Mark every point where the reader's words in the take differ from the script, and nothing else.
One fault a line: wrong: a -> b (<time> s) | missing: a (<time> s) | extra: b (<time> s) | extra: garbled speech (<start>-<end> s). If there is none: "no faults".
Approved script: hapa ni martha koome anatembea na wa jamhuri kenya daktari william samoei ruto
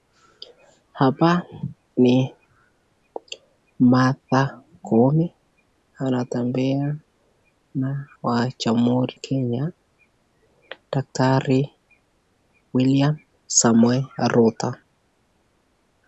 no faults